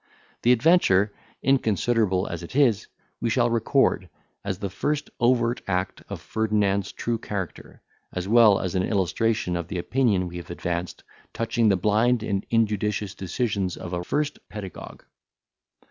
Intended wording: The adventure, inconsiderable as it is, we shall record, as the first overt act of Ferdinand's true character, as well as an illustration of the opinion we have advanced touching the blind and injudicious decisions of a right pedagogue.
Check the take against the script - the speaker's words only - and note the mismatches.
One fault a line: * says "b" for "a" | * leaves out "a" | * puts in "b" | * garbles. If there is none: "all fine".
* says "first" for "right"